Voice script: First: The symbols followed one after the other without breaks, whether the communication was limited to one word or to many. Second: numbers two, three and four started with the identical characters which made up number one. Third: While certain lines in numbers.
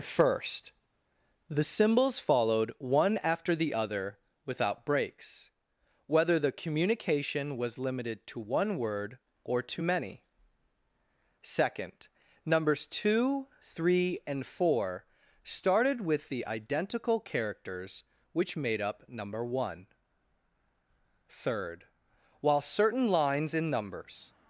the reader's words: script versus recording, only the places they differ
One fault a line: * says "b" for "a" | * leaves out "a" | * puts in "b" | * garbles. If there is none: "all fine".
all fine